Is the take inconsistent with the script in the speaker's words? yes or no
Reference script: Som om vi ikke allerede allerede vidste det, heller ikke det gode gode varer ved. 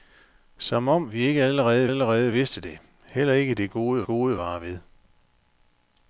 no